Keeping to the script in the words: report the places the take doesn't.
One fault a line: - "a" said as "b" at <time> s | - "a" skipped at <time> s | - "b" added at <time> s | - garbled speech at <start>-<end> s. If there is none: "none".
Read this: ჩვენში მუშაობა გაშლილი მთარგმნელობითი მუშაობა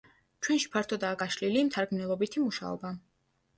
- "მუშაობა" said as "ფართოდაა" at 0.8 s